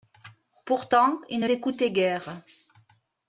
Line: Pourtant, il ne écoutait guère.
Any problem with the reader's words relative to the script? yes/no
no